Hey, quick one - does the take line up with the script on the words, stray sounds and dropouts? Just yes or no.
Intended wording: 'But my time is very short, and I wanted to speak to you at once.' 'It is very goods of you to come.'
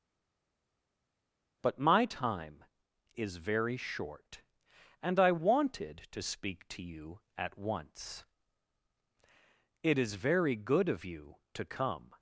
no